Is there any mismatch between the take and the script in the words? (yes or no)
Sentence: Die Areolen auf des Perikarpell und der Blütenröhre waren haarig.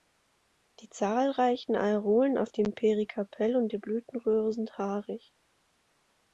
yes